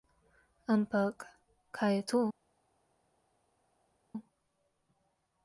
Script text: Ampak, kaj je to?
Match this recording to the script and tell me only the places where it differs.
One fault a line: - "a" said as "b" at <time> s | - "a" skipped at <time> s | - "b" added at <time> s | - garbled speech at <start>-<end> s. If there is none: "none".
none